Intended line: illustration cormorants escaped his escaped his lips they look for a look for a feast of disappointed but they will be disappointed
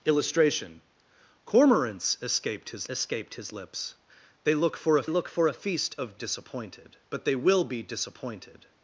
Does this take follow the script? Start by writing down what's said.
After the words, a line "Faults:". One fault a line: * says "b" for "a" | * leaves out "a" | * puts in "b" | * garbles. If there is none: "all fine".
illustration cormorants escaped his escaped his lips they look for a look for a feast of disappointed but they will be disappointed
Faults:
all fine